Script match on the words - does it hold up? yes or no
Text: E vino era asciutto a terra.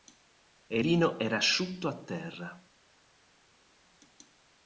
yes